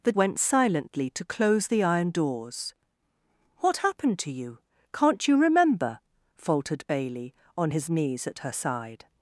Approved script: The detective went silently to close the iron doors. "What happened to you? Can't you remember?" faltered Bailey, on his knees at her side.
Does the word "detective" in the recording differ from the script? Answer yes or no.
yes